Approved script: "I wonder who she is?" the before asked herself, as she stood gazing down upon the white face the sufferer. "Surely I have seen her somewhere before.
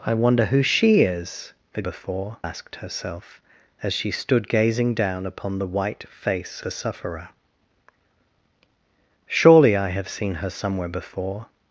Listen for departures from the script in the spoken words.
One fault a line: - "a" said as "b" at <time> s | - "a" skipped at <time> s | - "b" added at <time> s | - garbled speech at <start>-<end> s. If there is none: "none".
none